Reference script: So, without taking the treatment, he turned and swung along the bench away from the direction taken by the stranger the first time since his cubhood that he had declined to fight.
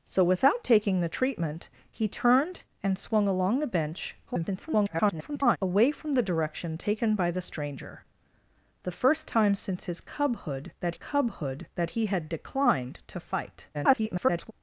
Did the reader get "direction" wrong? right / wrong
right